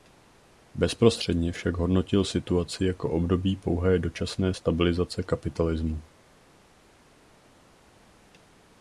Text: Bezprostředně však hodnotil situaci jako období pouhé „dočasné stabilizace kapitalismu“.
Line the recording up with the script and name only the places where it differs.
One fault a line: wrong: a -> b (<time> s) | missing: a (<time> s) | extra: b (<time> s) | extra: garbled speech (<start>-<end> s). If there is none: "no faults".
no faults